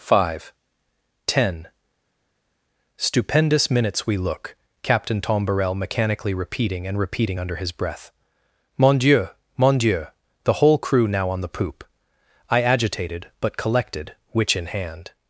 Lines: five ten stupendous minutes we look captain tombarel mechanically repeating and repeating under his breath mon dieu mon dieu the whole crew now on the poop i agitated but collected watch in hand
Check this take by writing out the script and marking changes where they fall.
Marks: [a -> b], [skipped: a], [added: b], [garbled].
five ten stupendous minutes we look captain tombarel mechanically repeating and repeating under his breath mon dieu mon dieu the whole crew now on the poop i agitated but collected [watch -> witch] in hand